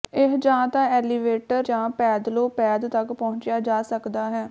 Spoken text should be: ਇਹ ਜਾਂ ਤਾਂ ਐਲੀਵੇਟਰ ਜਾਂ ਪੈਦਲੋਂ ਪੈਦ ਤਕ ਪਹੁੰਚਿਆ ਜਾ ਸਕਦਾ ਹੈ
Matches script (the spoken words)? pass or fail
pass